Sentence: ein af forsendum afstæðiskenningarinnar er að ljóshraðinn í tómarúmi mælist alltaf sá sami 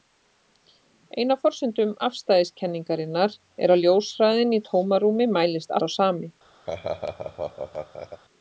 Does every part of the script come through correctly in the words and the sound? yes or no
no